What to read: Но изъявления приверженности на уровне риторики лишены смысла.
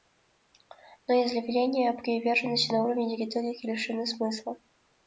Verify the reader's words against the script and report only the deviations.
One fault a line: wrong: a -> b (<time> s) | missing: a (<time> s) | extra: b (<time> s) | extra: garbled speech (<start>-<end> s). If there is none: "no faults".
no faults